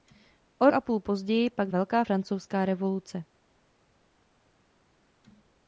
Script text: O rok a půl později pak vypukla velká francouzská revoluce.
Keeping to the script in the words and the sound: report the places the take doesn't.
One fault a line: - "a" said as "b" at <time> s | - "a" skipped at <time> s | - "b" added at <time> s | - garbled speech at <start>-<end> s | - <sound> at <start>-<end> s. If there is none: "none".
- "rok" skipped at 0.7 s
- "vypukla" skipped at 1.7 s